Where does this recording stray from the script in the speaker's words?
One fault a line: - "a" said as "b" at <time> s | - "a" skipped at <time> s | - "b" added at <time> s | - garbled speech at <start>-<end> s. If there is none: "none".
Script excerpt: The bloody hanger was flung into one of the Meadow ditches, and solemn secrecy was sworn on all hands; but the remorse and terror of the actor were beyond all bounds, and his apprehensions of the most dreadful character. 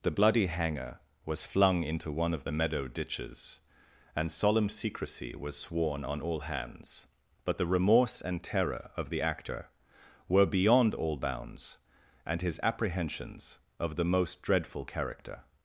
none